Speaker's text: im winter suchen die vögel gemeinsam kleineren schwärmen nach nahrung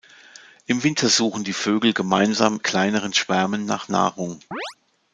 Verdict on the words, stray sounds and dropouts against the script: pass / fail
fail